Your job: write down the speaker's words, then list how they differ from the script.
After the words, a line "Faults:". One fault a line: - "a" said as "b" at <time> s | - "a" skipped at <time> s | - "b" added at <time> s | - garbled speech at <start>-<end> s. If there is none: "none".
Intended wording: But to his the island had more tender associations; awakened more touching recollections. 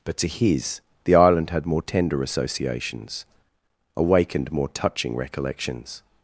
But to his the island had more tender associations; awakened more touching recollections.
Faults:
none